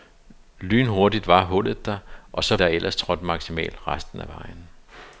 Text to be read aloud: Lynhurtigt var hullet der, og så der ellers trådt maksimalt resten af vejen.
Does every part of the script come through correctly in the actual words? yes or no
yes